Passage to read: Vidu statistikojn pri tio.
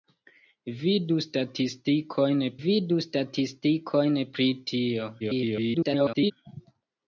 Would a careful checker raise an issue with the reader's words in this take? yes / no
yes